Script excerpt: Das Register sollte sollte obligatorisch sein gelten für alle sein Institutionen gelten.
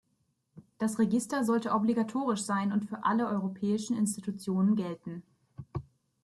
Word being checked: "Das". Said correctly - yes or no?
yes